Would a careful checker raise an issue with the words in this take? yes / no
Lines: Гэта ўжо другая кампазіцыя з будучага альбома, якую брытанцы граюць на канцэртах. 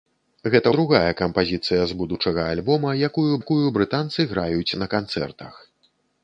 yes